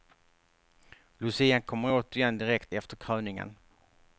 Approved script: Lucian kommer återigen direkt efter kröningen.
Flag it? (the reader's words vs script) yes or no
no